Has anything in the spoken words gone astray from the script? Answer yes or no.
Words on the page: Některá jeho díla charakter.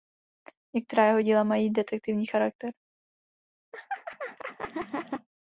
yes